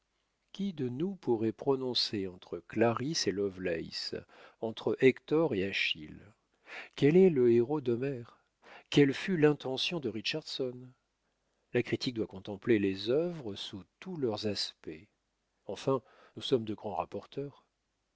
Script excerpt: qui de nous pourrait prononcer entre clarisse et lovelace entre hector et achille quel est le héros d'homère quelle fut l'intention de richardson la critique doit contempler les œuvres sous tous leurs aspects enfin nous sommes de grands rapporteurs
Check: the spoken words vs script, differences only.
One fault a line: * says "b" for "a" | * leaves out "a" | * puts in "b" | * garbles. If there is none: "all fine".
all fine